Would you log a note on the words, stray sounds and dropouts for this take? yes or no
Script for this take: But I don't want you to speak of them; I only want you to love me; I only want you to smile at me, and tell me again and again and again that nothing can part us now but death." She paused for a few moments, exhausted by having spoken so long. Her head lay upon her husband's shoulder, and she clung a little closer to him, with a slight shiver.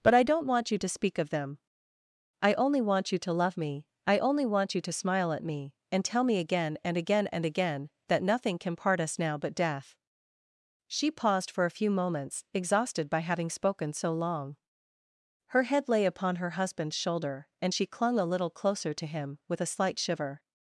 no